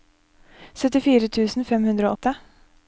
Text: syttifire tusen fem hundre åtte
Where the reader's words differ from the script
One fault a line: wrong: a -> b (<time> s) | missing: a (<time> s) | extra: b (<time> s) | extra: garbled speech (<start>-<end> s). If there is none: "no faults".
no faults